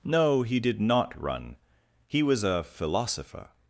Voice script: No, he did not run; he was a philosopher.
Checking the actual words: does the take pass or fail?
pass